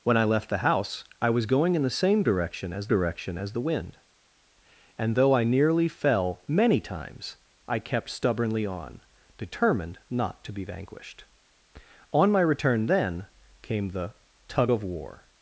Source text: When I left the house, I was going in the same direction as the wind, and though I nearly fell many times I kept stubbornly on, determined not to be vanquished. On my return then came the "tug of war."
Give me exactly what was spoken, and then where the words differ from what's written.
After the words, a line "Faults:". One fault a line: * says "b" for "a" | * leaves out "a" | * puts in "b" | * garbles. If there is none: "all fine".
When I left the house, I was going in the same direction as direction as the wind, and though I nearly fell many times I kept stubbornly on, determined not to be vanquished. On my return then came the "tug of war."
Faults:
* puts in "direction as"